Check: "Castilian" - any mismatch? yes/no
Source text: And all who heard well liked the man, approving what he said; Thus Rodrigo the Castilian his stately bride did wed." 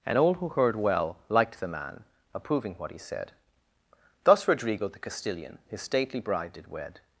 no